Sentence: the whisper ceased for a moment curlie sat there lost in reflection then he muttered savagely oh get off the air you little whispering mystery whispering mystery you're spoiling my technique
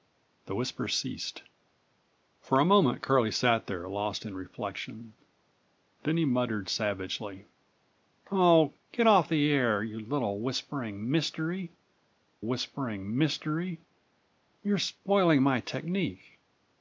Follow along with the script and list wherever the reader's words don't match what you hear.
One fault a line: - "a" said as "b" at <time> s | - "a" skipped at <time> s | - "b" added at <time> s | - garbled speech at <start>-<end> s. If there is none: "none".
none